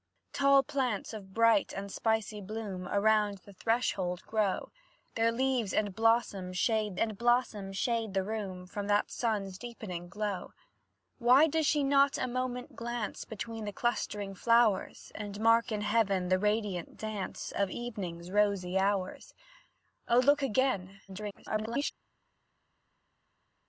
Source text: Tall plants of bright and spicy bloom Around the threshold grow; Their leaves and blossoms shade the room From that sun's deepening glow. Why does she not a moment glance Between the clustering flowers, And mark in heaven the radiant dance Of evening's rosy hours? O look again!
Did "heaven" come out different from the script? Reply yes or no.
no